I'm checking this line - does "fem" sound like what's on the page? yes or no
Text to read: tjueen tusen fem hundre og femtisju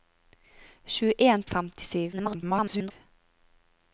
no